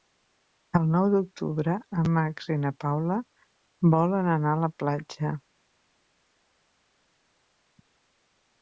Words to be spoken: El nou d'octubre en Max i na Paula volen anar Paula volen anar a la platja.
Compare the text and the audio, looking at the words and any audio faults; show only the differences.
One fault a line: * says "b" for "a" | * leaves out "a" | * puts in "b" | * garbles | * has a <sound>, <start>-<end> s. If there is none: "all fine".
* leaves out "Paula volen anar"